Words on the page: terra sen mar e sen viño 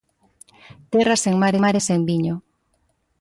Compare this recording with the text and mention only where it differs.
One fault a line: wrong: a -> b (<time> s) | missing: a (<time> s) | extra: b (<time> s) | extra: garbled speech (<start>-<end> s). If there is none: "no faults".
extra: mar (1.6 s)